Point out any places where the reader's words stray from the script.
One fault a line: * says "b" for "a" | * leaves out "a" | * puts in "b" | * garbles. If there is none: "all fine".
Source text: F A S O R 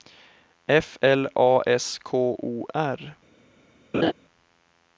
* puts in "L"
* puts in "K"